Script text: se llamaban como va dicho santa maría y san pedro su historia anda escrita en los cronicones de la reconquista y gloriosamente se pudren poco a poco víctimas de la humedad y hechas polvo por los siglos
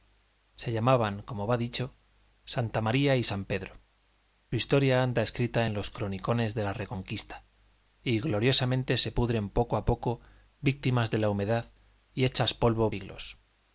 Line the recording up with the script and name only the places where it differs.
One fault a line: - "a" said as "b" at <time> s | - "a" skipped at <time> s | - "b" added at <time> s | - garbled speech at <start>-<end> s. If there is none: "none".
- "su" skipped at 3.8 s
- "por los" skipped at 12.9 s